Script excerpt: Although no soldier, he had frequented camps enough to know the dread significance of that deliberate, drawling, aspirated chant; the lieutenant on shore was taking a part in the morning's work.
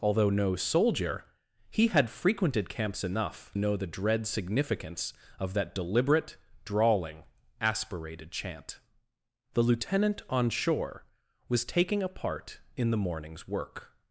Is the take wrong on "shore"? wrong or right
right